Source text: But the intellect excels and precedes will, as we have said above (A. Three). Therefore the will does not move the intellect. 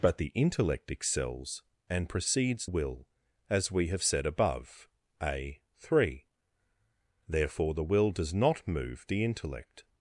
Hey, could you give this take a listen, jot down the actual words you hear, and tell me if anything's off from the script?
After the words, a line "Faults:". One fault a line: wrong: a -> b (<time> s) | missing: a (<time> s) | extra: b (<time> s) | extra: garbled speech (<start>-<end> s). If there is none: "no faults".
But the intellect excels and precedes will, as we have said above (A. Three). Therefore the will does not move the intellect.
Faults:
no faults